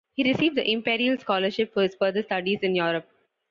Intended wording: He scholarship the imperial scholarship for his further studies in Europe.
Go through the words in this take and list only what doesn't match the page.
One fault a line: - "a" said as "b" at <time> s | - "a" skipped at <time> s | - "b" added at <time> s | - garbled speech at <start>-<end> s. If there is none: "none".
- "scholarship" said as "received" at 0.2 s